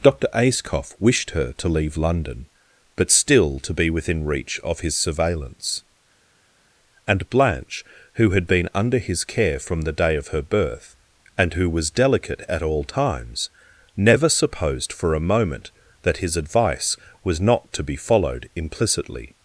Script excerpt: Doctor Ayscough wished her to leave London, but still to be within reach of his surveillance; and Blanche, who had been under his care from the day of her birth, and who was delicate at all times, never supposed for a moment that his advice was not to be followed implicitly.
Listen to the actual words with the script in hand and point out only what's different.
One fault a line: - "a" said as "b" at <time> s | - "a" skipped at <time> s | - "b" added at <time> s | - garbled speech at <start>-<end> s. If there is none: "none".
none